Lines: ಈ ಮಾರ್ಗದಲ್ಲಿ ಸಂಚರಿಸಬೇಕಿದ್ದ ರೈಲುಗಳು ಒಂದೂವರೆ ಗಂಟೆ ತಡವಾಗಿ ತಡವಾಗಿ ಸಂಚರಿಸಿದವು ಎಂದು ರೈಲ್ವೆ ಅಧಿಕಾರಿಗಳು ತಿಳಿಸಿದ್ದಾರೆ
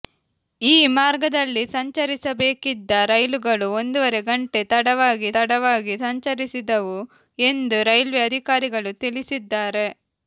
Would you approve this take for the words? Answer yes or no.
yes